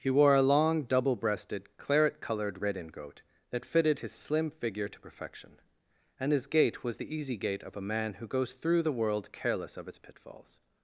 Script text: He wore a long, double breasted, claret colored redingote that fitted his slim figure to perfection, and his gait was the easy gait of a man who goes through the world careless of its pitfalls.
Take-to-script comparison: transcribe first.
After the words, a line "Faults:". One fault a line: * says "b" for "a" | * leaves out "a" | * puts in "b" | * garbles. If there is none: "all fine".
He wore a long, double breasted, claret colored redingote that fitted his slim figure to perfection, and his gait was the easy gait of a man who goes through the world careless of its pitfalls.
Faults:
all fine